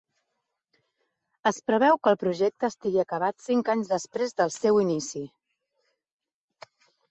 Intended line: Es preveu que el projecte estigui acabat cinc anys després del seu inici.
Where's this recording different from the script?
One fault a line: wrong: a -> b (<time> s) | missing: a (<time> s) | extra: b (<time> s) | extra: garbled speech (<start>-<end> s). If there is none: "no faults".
no faults